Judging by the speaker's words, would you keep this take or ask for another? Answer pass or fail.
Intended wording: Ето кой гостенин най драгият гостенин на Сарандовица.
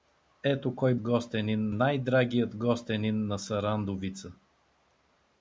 pass